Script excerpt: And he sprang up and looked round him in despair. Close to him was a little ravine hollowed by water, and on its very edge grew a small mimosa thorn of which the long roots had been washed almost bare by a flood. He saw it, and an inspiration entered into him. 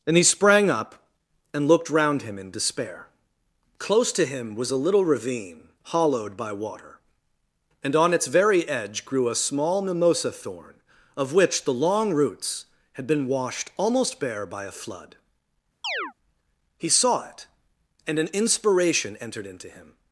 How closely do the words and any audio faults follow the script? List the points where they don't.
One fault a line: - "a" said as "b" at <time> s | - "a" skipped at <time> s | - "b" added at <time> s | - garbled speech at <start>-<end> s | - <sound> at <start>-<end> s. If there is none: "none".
- chirp at 15.8-16.1 s